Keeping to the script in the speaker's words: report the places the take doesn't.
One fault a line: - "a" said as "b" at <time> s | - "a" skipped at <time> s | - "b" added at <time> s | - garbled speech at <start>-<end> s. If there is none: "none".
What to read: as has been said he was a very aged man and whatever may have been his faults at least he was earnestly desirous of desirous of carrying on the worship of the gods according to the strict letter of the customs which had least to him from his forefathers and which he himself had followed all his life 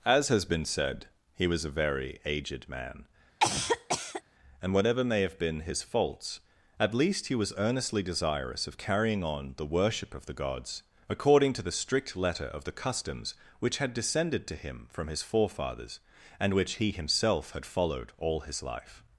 - "desirous of" skipped at 8.8 s
- "least" said as "descended" at 13.9 s